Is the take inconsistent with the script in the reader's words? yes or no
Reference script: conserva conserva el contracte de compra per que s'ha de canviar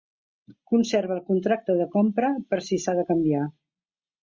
yes